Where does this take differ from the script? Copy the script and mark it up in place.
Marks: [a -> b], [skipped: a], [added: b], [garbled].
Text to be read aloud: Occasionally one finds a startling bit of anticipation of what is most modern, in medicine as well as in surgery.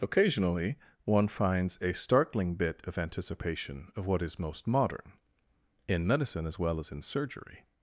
Occasionally one finds a startling bit of anticipation of what is most modern, in medicine as well as in surgery.